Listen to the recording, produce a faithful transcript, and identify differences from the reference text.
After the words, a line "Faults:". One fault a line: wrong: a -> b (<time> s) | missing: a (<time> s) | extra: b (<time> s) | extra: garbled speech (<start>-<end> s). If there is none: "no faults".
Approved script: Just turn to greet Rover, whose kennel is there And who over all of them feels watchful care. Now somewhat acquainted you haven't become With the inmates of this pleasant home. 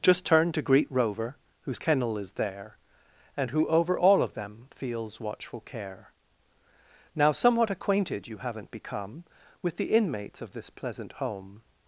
Just turn to greet Rover, whose kennel is there And who over all of them feels watchful care. Now somewhat acquainted you haven't become With the inmates of this pleasant home.
Faults:
no faults